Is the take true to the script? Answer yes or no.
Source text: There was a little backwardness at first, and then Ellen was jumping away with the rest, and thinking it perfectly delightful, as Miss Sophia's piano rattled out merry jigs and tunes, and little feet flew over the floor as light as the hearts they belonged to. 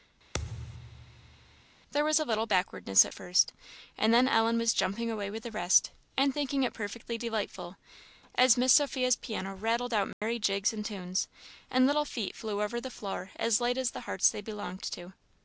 yes